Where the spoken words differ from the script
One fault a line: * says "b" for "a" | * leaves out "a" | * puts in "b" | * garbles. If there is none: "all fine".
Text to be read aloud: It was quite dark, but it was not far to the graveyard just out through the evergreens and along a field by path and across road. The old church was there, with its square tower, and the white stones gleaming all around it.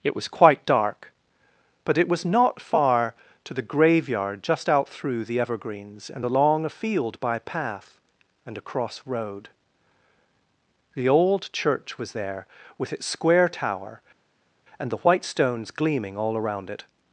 all fine